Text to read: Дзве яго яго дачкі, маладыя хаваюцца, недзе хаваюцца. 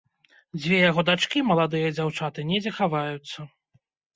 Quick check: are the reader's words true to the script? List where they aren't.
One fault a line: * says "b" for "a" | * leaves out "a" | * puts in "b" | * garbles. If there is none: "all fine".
* leaves out "яго"
* says "дзяўчаты" for "хаваюцца"